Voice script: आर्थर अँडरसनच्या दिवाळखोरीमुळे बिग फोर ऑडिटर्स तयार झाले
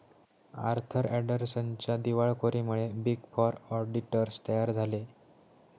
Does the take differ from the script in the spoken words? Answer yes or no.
no